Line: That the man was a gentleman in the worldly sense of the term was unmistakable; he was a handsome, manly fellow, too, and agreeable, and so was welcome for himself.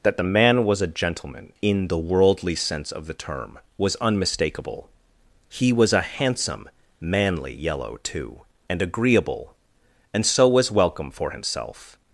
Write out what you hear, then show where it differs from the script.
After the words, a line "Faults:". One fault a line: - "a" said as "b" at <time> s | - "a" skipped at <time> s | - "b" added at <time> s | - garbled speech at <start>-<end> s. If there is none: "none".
That the man was a gentleman in the worldly sense of the term was unmistakable; he was a handsome, manly yellow, too, and agreeable, and so was welcome for himself.
Faults:
- "fellow" said as "yellow" at 7.5 s